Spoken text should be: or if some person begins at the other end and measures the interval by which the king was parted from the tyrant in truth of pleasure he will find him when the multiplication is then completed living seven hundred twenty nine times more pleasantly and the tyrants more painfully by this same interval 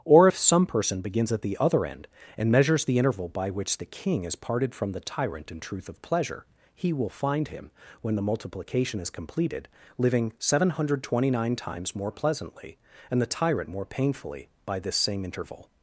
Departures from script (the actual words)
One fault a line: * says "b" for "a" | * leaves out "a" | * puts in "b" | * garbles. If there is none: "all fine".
* says "is" for "was"
* leaves out "then"
* says "tyrant" for "tyrants"